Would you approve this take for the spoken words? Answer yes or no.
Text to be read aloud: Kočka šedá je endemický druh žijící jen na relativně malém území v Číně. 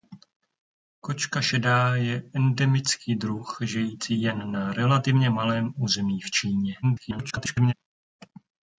no